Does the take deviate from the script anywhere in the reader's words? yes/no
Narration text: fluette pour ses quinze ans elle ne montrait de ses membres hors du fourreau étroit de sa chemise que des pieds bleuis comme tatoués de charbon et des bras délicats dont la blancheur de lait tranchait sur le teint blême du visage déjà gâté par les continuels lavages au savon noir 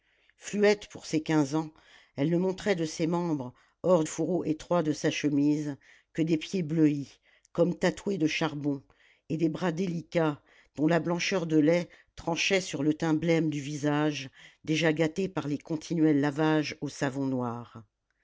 yes